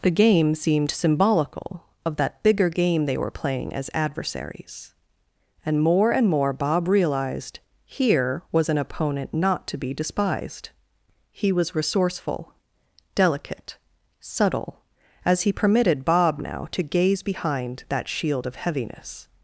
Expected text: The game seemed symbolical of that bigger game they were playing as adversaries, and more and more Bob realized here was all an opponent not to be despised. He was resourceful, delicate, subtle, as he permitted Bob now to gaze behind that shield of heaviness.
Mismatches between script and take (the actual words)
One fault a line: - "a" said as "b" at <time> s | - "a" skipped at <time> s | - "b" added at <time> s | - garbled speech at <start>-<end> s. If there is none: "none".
- "all" skipped at 8.7 s